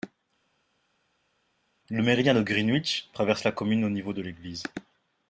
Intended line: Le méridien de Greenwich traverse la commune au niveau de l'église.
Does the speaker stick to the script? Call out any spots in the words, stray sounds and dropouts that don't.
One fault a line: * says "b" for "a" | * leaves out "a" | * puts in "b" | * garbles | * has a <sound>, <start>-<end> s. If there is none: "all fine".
all fine